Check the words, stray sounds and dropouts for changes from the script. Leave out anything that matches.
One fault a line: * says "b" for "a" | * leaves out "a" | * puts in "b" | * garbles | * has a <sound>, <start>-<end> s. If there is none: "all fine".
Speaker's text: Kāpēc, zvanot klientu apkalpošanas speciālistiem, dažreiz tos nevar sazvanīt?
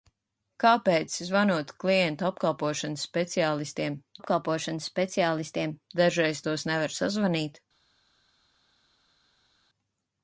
* puts in "apkalpošanas speciālistiem"